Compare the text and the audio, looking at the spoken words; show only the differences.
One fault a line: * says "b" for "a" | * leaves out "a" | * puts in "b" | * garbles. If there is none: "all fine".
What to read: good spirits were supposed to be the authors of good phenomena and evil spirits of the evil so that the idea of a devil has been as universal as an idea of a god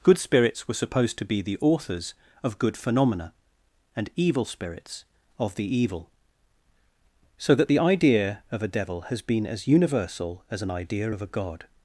all fine